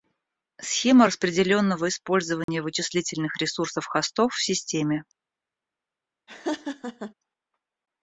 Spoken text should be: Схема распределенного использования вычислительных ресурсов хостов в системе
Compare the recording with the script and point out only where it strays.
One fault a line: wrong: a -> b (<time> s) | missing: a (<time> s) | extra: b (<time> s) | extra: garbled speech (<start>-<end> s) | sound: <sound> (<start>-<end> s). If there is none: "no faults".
sound: dropout (2.4-2.5 s)
sound: laugh (6.3-7.1 s)